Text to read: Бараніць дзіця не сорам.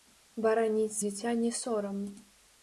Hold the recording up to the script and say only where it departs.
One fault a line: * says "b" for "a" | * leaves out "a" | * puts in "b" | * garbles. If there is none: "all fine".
all fine